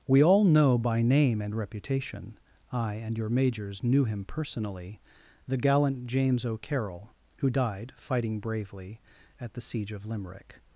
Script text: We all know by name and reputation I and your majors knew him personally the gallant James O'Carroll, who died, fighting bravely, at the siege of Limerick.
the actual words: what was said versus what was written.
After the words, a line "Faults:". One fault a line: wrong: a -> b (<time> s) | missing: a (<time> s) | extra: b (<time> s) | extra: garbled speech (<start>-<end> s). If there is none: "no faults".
We all know by name and reputation I and your majors knew him personally the gallant James O'Carroll, who died, fighting bravely, at the siege of Limerick.
Faults:
no faults